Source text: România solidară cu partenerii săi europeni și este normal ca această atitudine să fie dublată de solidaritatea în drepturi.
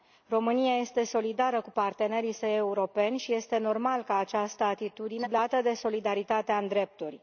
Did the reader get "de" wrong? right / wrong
right